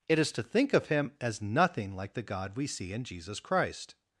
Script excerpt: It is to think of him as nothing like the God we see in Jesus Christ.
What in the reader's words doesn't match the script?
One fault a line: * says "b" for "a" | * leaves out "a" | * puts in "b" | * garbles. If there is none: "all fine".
all fine